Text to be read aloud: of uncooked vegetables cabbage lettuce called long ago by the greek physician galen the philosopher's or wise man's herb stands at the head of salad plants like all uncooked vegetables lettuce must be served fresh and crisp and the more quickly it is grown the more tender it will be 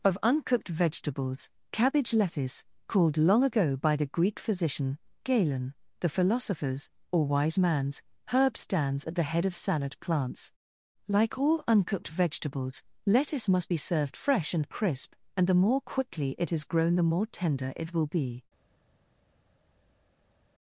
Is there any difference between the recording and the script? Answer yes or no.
no